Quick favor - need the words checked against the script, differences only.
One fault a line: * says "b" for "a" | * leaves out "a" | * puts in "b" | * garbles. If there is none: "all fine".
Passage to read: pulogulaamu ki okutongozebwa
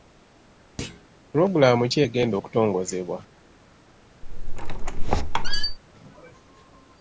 * puts in "egenda"